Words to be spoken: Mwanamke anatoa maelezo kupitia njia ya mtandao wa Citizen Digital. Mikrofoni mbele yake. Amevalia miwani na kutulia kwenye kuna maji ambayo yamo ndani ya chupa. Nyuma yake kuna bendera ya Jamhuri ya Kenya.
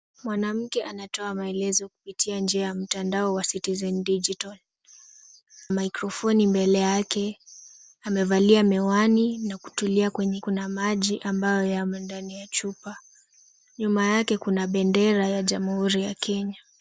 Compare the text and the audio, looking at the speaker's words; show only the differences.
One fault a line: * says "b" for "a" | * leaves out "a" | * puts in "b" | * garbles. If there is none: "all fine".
all fine